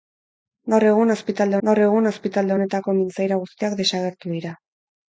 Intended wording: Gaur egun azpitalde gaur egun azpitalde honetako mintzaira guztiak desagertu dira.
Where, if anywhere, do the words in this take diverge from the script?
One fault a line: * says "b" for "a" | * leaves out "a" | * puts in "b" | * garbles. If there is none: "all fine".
all fine